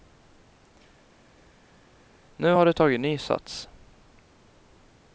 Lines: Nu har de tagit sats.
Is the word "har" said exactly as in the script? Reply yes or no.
yes